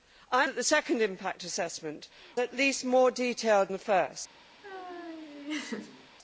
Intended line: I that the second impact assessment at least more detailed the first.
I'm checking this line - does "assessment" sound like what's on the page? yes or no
yes